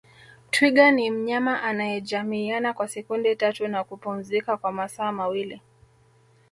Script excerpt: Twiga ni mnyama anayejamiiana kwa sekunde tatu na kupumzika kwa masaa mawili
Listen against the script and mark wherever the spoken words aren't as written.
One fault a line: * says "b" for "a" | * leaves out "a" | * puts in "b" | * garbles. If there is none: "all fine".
all fine